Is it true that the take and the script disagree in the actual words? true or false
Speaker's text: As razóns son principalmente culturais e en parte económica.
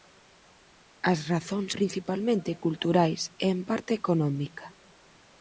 true